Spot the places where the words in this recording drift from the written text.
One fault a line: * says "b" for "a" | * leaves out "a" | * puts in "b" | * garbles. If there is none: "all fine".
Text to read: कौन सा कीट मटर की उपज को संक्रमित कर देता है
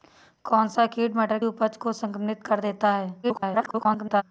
* leaves out "की"
* garbles